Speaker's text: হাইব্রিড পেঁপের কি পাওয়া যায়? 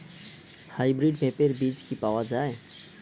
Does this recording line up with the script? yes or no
no